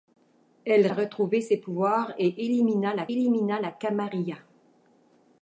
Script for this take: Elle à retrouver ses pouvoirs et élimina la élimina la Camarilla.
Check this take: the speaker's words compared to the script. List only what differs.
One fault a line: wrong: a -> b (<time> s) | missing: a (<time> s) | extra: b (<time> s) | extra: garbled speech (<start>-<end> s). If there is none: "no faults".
no faults